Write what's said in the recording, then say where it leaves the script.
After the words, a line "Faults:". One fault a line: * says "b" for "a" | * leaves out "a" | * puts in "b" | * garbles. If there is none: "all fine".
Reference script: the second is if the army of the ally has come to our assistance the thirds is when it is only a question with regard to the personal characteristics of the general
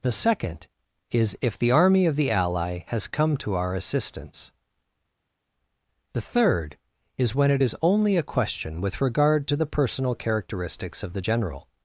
the second is if the army of the ally has come to our assistance the third is when it is only a question with regard to the personal characteristics of the general
Faults:
* says "third" for "thirds"